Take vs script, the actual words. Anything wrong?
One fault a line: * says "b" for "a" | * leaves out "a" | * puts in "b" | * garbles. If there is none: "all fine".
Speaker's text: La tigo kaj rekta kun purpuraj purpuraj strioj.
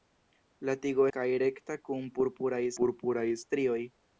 all fine